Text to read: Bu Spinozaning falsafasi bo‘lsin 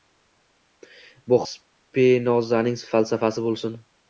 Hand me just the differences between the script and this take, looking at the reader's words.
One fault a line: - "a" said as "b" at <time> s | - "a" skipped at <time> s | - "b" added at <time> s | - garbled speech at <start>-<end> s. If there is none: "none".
none